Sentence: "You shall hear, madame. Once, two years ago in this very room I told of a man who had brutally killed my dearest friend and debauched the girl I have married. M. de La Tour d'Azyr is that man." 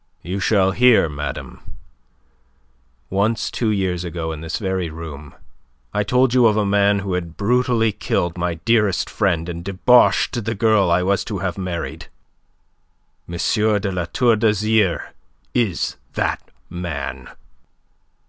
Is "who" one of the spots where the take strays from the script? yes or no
no